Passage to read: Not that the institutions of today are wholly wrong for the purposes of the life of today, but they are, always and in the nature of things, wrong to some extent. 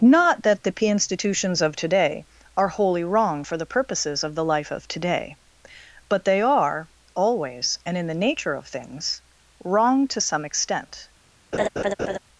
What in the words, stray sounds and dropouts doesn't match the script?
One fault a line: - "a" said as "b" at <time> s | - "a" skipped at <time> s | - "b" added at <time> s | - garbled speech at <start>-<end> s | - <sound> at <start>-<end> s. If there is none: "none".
- "p" added at 0.7 s
- laugh at 11.5-12.2 s